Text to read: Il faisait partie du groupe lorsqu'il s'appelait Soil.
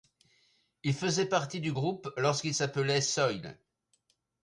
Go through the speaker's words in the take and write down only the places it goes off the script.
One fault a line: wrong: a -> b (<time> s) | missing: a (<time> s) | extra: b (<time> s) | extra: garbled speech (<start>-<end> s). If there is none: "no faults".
no faults